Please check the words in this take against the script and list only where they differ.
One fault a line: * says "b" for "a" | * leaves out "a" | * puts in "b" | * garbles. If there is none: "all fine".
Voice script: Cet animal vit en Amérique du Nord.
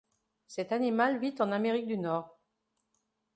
all fine